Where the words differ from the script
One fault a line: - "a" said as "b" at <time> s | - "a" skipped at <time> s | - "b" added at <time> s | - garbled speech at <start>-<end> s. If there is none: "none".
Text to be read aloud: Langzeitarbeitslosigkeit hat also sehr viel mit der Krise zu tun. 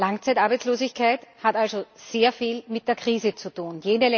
none